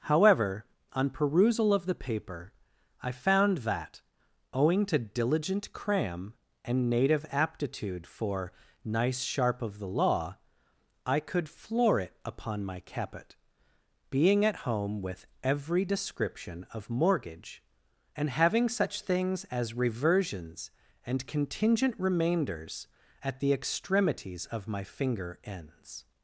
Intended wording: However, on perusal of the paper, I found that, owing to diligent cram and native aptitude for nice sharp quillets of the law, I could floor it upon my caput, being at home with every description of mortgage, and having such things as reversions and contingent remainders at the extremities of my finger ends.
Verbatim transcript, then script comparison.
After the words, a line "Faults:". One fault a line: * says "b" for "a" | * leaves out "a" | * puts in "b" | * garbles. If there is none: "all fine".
However, on perusal of the paper, I found that, owing to diligent cram and native aptitude for nice sharp of the law, I could floor it upon my caput, being at home with every description of mortgage, and having such things as reversions and contingent remainders at the extremities of my finger ends.
Faults:
* leaves out "quillets"